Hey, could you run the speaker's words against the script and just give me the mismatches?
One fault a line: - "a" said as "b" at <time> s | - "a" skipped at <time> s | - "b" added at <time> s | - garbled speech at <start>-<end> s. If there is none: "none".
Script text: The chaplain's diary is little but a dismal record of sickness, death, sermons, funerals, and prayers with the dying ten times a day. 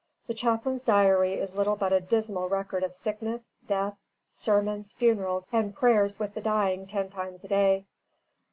none